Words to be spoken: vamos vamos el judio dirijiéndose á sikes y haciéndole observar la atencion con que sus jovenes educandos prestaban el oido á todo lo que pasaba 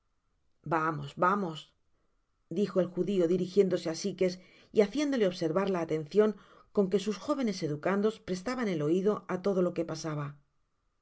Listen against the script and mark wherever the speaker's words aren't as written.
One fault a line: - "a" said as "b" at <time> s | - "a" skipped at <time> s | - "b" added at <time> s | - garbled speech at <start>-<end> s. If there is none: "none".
- "dijo" added at 2.6 s